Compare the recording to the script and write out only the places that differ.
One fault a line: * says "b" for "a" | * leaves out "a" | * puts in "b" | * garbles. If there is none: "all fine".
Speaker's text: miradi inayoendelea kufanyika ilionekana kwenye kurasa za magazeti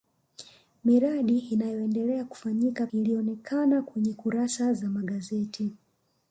all fine